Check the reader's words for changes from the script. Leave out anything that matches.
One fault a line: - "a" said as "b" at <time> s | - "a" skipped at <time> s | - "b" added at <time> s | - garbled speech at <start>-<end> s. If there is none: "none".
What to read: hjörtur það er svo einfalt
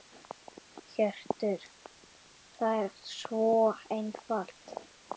none